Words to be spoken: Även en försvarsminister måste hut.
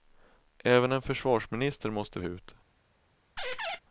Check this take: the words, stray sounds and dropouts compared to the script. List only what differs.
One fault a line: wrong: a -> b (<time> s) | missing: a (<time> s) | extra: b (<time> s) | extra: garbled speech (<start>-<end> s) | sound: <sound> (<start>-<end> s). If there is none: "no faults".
sound: squeak (3.4-3.8 s)